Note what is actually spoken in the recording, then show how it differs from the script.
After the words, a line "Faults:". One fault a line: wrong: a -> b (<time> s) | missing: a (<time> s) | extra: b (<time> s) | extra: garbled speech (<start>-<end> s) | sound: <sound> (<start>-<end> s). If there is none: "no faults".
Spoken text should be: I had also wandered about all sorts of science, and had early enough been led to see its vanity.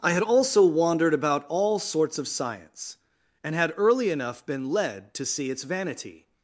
I had also wandered about all sorts of science, and had early enough been led to see its vanity.
Faults:
no faults